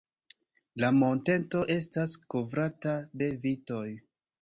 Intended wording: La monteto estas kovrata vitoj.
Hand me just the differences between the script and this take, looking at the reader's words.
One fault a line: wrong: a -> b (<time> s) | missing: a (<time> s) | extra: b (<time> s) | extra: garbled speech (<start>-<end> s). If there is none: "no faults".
extra: de (3.2 s)